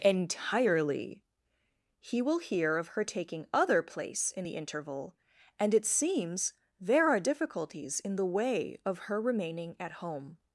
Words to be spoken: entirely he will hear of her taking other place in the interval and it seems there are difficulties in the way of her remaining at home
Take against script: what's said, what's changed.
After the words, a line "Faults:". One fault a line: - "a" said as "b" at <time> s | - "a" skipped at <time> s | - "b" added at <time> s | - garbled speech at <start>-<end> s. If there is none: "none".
entirely he will hear of her taking other place in the interval and it seems there are difficulties in the way of her remaining at home
Faults:
none